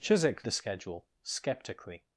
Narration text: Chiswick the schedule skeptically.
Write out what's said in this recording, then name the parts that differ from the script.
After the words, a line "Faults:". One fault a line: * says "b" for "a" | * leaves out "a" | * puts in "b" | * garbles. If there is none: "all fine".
Chiswick the schedule skeptically.
Faults:
all fine